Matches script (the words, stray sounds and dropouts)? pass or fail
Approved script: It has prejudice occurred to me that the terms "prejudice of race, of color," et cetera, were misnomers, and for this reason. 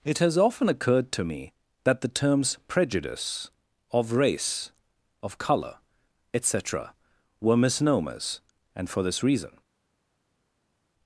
fail